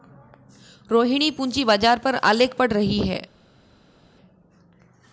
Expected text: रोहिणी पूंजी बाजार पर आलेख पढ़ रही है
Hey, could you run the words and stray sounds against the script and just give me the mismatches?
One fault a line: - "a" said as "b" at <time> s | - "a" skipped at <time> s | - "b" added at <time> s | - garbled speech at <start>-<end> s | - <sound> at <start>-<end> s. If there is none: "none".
none